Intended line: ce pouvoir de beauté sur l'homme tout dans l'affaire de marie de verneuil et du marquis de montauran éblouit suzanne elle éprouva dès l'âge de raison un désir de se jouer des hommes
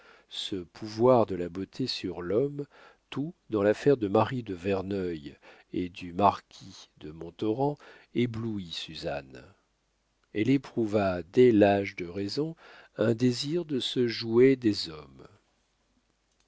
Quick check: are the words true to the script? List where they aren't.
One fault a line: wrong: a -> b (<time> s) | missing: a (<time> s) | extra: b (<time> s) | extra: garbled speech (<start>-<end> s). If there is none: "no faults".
extra: la (1.4 s)